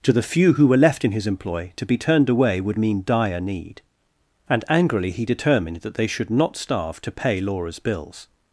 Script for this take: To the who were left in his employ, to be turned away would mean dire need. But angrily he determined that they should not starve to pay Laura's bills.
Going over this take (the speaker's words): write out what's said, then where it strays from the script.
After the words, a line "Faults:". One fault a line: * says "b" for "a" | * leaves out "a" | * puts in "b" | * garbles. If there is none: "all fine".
To the few who were left in his employ, to be turned away would mean dire need. And angrily he determined that they should not starve to pay Laura's bills.
Faults:
* puts in "few"
* says "And" for "But"